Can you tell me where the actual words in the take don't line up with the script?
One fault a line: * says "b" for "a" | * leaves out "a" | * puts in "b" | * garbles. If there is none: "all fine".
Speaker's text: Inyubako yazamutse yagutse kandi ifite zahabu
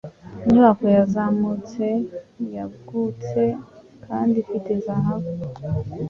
all fine